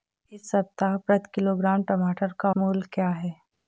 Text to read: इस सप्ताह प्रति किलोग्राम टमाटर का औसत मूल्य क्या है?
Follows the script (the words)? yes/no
no